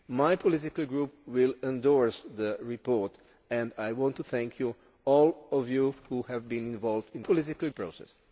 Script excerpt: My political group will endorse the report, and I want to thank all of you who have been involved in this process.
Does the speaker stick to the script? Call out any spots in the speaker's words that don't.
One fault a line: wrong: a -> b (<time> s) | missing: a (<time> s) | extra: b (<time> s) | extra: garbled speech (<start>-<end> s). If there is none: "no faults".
wrong: this -> political (7.2 s)